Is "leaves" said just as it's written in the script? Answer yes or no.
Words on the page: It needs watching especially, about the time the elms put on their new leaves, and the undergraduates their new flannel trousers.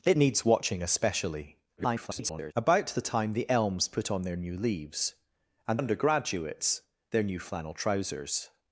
yes